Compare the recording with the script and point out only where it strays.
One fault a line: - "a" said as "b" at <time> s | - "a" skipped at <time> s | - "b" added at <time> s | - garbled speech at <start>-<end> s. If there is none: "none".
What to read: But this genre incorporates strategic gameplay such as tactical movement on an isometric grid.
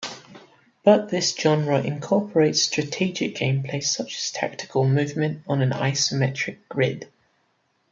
none